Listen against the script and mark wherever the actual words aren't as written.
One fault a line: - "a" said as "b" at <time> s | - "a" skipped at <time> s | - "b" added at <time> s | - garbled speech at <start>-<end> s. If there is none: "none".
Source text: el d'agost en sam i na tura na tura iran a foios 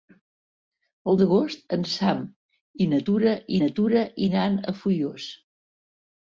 none